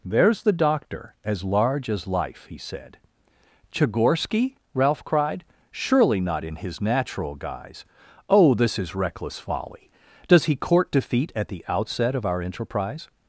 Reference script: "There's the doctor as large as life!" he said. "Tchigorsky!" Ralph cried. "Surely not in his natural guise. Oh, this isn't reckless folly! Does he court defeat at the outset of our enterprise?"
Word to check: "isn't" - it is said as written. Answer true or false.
false